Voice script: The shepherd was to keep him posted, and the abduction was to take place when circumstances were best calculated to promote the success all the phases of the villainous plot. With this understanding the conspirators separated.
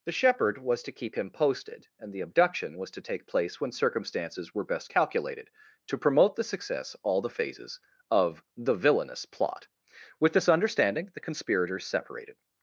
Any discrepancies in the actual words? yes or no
no